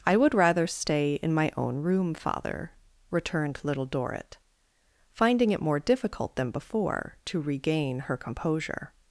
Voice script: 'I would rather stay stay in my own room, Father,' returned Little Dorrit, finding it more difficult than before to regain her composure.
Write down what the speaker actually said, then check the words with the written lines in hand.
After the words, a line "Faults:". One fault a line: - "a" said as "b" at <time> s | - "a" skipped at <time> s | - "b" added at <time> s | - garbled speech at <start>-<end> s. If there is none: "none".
'I would rather stay in my own room, Father,' returned Little Dorrit, finding it more difficult than before to regain her composure.
Faults:
- "stay" skipped at 1.2 s